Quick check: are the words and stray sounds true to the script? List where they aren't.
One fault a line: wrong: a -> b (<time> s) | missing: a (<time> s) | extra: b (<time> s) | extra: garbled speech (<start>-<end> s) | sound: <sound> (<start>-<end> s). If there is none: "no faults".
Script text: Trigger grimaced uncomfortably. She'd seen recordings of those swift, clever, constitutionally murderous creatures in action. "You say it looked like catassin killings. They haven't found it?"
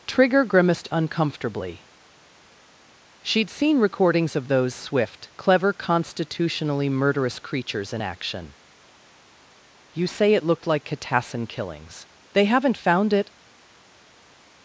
no faults